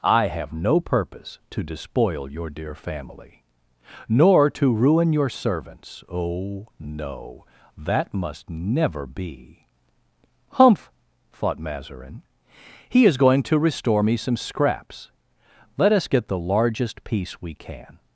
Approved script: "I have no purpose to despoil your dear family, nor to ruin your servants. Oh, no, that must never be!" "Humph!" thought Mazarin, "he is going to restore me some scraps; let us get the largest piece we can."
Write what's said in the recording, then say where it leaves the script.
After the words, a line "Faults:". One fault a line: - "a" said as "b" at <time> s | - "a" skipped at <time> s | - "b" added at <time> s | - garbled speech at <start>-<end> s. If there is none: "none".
"I have no purpose to despoil your dear family, nor to ruin your servants. Oh, no, that must never be!" "Humph!" thought Mazarin, "he is going to restore me some scraps; let us get the largest piece we can."
Faults:
none